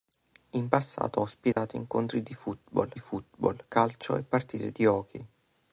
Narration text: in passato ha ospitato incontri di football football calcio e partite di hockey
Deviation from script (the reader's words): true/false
false